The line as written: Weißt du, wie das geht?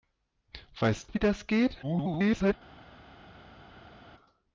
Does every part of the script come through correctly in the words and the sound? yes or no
no